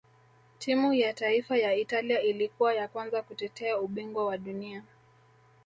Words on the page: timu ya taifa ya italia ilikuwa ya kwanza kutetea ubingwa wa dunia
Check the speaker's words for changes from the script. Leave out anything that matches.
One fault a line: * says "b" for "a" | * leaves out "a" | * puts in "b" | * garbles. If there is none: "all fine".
all fine